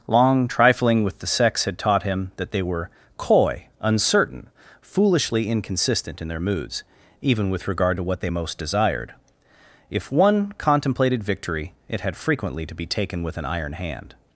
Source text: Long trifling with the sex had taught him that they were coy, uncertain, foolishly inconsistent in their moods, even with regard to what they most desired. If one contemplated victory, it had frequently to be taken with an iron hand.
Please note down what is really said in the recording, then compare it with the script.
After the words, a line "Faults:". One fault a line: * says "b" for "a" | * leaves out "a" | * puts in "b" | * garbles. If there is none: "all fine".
Long trifling with the sex had taught him that they were coy, uncertain, foolishly inconsistent in their moods, even with regard to what they most desired. If one contemplated victory, it had frequently to be taken with an iron hand.
Faults:
all fine